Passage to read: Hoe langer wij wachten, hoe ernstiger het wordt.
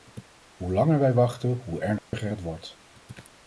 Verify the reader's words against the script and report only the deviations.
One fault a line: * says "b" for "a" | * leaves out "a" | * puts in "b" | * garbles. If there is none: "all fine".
all fine